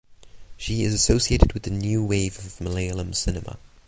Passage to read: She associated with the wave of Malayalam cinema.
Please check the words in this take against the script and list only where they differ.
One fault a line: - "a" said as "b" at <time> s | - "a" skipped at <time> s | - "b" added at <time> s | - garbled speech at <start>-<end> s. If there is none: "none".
- "is" added at 0.8 s
- "new" added at 1.7 s